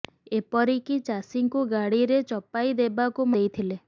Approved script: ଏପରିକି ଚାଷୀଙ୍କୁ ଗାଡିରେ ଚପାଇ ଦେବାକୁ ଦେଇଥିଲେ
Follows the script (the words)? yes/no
yes